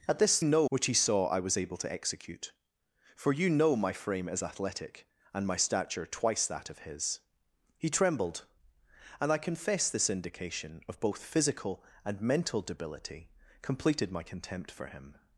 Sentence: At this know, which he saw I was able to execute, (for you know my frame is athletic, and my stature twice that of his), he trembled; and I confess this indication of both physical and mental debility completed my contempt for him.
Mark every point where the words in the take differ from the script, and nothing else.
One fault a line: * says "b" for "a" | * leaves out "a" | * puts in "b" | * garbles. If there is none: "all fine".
all fine